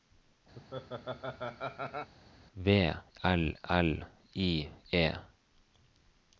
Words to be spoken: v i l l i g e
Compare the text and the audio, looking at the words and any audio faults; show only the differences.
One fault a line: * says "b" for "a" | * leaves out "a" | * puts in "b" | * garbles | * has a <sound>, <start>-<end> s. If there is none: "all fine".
* has a laugh, 0.6-2.1 s
* leaves out "i"
* leaves out "g"